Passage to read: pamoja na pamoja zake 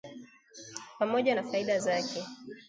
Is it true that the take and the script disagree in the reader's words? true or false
true